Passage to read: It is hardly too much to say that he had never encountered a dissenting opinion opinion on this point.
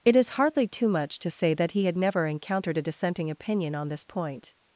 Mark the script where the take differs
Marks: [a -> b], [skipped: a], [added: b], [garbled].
It is hardly too much to say that he had never encountered a dissenting opinion [skipped: opinion] on this point.